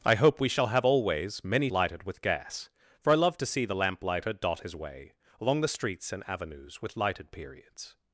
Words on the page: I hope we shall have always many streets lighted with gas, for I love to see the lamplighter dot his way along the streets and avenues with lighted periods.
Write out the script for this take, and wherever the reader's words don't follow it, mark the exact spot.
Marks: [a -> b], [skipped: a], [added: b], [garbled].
I hope we shall have always many [skipped: streets] lighted with gas, for I love to see the lamplighter dot his way along the streets and avenues with lighted periods.